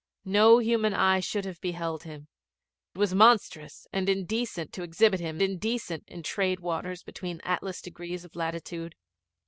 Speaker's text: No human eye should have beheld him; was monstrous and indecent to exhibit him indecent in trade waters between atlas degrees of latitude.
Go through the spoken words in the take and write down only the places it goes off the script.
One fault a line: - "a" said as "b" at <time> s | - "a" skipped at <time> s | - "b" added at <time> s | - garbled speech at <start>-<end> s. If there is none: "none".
none